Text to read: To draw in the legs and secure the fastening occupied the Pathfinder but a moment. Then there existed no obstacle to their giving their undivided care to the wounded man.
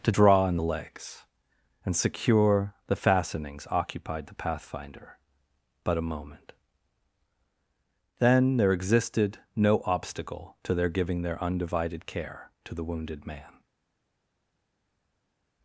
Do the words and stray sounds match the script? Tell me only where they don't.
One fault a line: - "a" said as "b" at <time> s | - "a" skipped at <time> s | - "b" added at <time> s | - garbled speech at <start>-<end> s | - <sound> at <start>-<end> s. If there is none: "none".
- "fastening" said as "fastenings" at 3.0 s